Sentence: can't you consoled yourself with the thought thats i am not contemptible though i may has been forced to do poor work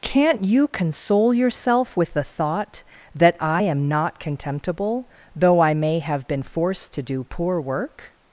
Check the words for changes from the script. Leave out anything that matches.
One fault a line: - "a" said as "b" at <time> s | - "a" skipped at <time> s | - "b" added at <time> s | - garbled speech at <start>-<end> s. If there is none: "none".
- "consoled" said as "console" at 0.7 s
- "thats" said as "that" at 3.1 s
- "has" said as "have" at 6.0 s